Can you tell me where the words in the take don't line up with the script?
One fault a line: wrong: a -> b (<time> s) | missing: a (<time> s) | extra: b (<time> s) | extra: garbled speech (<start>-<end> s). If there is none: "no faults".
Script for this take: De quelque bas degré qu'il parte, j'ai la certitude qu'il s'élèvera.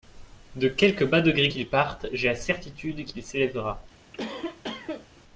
no faults